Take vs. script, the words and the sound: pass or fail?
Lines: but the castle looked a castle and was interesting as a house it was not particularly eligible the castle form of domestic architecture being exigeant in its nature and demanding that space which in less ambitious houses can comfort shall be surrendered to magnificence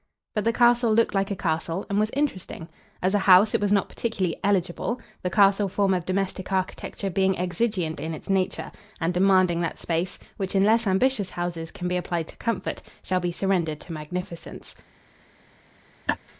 fail